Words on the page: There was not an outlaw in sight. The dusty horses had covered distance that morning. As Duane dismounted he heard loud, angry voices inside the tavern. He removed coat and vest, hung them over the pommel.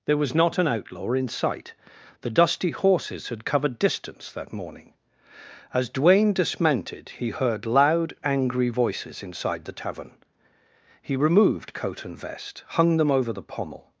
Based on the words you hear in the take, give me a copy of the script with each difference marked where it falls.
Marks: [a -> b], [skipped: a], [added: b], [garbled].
There was not an outlaw in sight. The dusty horses had covered distance that morning. As Duane dismounted he heard loud, angry voices inside the tavern. He removed coat and vest, hung them over the pommel.